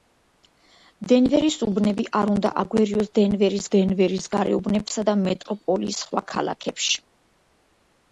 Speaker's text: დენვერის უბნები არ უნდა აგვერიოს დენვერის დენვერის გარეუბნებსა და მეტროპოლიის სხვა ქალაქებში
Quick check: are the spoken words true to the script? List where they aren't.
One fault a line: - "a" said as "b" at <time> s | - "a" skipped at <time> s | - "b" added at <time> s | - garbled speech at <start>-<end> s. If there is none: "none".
none